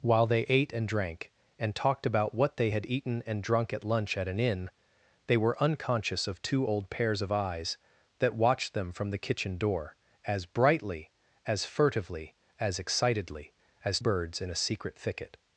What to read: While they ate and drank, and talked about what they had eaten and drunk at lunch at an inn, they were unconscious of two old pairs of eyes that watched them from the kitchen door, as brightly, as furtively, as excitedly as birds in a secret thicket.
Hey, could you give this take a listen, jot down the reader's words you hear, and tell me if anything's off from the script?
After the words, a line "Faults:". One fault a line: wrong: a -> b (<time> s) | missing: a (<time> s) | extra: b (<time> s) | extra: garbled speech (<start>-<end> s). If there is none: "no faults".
While they ate and drank, and talked about what they had eaten and drunk at lunch at an inn, they were unconscious of two old pairs of eyes that watched them from the kitchen door, as brightly, as furtively, as excitedly as birds in a secret thicket.
Faults:
no faults